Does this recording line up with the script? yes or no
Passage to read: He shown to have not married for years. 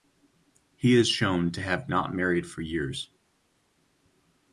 no